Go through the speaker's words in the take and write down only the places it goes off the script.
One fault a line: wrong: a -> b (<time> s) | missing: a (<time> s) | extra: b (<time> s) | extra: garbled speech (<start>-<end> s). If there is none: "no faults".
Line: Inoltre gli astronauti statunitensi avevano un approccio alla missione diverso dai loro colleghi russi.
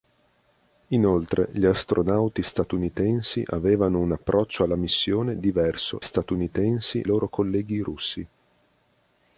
wrong: dai -> statunitensi (6.0 s)